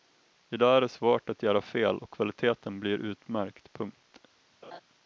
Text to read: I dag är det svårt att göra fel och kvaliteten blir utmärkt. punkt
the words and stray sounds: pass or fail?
fail